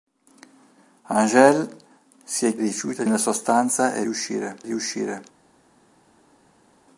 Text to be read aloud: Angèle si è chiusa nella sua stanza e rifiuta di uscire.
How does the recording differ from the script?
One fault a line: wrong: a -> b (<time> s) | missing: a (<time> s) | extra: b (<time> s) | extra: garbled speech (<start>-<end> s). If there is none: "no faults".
wrong: chiusa -> rifiuta (2.6 s)
wrong: rifiuta -> uscire (4.0 s)